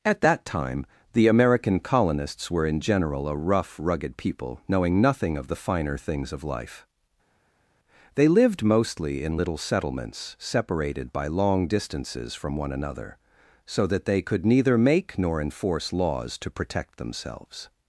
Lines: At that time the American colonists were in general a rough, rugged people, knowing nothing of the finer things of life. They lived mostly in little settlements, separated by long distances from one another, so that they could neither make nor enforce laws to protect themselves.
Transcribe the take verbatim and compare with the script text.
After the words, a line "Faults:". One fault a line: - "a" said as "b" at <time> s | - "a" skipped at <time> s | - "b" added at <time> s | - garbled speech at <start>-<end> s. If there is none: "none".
At that time the American colonists were in general a rough, rugged people, knowing nothing of the finer things of life. They lived mostly in little settlements, separated by long distances from one another, so that they could neither make nor enforce laws to protect themselves.
Faults:
none